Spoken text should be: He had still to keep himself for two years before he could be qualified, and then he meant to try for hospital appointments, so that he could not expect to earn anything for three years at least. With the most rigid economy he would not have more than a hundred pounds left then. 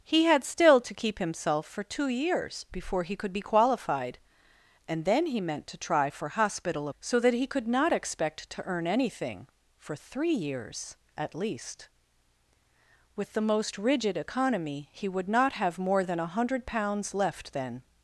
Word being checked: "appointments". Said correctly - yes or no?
no